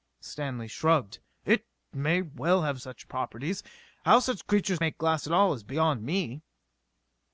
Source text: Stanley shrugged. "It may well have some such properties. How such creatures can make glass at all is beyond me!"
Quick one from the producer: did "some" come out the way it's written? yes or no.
no